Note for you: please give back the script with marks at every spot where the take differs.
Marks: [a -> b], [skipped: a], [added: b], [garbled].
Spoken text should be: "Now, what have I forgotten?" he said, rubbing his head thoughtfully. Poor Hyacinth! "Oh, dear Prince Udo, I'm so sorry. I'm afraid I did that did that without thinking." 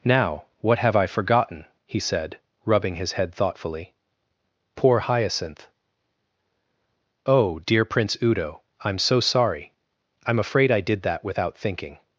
"Now, what have I forgotten?" he said, rubbing his head thoughtfully. Poor Hyacinth! "Oh, dear Prince Udo, I'm so sorry. I'm afraid I did that [skipped: did that] without thinking."